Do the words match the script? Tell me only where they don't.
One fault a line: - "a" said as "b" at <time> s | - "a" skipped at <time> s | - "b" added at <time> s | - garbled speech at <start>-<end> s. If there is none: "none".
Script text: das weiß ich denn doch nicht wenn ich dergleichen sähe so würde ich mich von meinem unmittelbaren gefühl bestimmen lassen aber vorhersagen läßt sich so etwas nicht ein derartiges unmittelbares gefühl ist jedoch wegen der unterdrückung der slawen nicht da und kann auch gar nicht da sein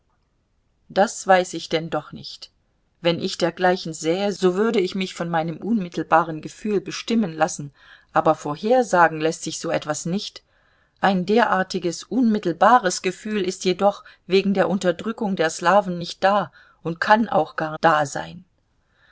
- "nicht" skipped at 17.8 s